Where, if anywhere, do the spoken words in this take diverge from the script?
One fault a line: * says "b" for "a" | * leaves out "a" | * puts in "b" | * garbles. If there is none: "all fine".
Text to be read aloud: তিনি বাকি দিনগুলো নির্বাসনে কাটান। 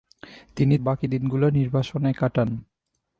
all fine